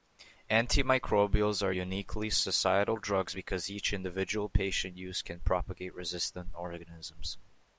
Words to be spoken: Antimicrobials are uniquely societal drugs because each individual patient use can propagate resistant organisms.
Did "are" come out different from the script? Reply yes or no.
no